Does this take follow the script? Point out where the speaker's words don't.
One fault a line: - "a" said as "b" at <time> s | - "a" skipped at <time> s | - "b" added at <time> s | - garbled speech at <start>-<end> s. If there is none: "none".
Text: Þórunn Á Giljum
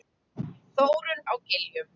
none